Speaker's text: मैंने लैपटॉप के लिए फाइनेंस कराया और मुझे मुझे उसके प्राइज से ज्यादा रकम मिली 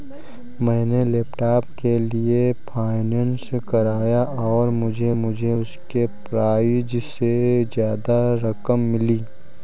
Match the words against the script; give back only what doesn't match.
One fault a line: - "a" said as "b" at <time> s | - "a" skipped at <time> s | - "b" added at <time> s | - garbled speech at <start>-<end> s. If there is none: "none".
none